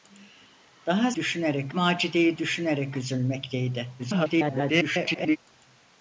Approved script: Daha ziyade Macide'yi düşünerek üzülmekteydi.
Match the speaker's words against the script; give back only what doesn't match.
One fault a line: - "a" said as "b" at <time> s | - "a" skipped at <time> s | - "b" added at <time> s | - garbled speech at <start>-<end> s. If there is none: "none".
- "ziyade" said as "düşünerek" at 1.2 s
- garbled speech at 4.0-5.4 s